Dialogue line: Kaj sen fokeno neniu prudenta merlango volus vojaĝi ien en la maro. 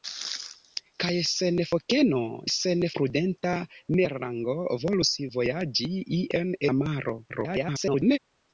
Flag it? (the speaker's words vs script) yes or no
yes